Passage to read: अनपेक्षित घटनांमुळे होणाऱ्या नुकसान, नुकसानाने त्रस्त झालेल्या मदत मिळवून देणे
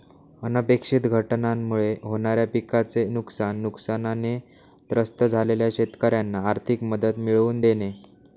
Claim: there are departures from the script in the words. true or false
true